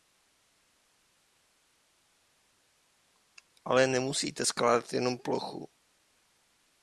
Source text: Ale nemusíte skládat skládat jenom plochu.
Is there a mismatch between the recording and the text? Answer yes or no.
yes